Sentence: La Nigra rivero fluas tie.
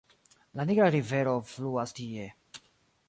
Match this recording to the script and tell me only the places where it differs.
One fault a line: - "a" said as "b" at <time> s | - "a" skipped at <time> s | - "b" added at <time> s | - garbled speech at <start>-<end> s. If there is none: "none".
none